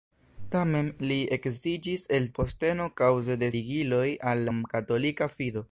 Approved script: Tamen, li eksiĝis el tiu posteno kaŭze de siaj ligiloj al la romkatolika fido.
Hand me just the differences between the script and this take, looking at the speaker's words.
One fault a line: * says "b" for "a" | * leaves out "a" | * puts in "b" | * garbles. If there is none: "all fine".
* leaves out "tiu"
* leaves out "siaj"
* leaves out "la"